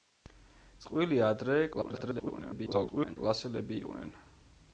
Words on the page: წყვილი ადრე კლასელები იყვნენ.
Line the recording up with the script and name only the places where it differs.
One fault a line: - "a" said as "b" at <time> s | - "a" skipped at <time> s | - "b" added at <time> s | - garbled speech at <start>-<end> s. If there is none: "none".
- garbled speech at 1.7-3.2 s